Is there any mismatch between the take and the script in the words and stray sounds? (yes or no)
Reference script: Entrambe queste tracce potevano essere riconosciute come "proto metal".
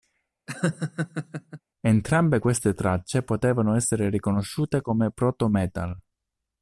yes